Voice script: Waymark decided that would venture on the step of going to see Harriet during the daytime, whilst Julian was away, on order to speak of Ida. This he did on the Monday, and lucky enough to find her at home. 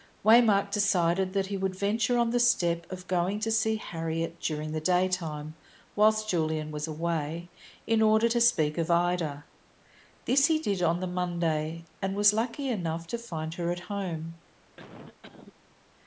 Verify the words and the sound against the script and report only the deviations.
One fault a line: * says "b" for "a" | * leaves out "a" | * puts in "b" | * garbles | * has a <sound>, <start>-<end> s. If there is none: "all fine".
* puts in "he"
* says "in" for "on"
* puts in "was"
* has a cough, 14.8-15.5 s